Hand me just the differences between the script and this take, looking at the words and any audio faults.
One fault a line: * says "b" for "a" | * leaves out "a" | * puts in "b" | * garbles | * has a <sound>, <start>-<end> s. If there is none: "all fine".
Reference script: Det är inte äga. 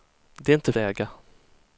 all fine